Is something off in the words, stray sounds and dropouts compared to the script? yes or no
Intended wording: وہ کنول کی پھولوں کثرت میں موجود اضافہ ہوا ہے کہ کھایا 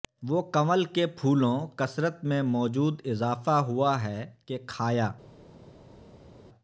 yes